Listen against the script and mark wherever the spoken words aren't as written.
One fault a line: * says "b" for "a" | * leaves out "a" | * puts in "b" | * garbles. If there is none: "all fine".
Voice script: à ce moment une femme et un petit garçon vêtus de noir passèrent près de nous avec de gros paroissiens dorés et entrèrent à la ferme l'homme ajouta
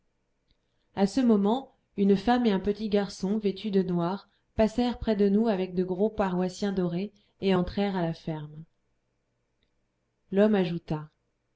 all fine